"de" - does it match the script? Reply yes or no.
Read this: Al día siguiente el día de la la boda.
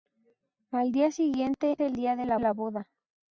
yes